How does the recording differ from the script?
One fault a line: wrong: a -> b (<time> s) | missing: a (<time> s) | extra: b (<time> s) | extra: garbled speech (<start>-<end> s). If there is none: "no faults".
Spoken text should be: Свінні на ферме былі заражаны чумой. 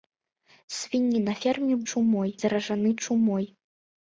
wrong: былі -> чумой (1.9 s)